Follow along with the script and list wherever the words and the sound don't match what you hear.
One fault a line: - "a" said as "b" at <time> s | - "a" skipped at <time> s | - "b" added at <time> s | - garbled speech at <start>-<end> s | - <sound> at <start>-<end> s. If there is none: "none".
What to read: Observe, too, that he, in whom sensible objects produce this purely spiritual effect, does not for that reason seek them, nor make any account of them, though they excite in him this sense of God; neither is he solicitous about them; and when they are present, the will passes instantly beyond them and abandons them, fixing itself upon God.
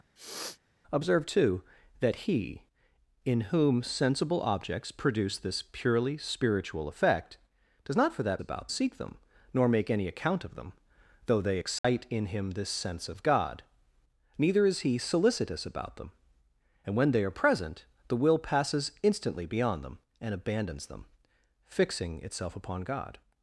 - sniff at 0.2-0.6 s
- "reason" said as "about" at 8.4 s
- dropout at 11.8-11.8 s